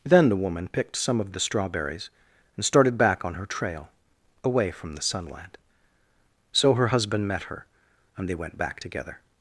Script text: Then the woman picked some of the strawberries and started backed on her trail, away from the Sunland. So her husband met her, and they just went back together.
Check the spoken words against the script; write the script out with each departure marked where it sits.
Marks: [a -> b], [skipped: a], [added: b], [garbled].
Then the woman picked some of the strawberries and started [backed -> back] on her trail, away from the Sunland. So her husband met her, and they [skipped: just] went back together.